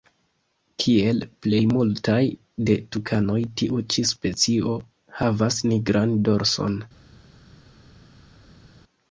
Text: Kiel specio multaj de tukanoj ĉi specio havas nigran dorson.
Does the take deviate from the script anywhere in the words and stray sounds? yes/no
yes